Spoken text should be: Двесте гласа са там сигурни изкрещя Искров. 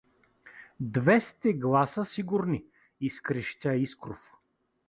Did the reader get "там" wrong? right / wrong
wrong